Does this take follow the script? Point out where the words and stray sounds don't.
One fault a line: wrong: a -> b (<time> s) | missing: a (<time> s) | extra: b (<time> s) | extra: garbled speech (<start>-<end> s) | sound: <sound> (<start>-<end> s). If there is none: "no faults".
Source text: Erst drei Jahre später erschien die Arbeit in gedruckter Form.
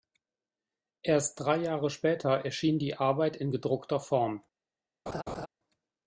sound: laugh (5.1-5.5 s)